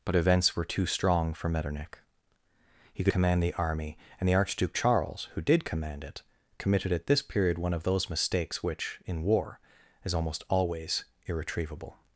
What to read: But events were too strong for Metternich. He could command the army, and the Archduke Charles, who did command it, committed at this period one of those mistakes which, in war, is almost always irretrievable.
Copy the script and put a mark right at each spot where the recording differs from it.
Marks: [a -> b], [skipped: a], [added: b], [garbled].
But events were too strong for Metternich. He could command the army, and the Archduke Charles, who did command it, committed at this period one of those mistakes which, in war, is almost always irretrievable.